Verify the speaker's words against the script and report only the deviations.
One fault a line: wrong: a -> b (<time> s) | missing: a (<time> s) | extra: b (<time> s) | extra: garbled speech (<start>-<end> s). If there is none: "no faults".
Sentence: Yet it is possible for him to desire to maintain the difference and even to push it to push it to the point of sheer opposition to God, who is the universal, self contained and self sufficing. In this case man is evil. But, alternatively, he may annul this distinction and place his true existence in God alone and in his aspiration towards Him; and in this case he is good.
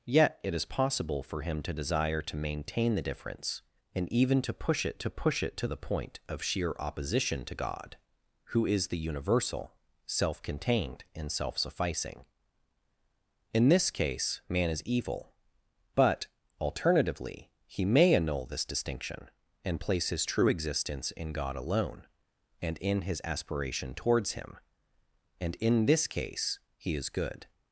no faults